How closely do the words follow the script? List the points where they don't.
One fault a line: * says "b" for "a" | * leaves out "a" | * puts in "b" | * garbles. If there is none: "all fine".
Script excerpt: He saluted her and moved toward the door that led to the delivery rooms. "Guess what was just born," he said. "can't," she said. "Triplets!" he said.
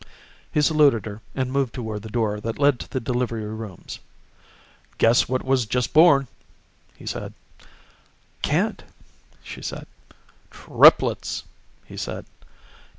all fine